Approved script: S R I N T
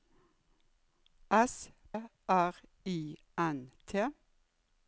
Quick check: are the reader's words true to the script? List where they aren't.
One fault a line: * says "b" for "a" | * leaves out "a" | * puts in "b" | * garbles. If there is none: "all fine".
all fine